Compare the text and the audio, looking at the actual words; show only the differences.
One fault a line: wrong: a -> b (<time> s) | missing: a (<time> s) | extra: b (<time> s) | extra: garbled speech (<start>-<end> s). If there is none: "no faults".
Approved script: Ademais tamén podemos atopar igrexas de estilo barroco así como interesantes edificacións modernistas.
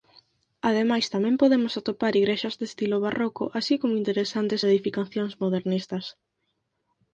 no faults